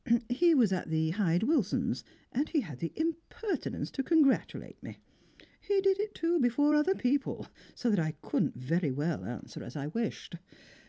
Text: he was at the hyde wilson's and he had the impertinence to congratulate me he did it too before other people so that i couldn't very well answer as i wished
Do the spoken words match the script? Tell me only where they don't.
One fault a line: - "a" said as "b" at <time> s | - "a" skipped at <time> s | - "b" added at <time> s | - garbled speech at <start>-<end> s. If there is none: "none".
none